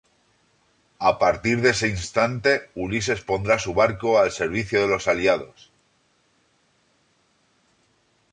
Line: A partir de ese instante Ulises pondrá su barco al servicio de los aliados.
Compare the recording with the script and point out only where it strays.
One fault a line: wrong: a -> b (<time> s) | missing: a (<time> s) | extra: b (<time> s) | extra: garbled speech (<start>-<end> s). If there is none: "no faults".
no faults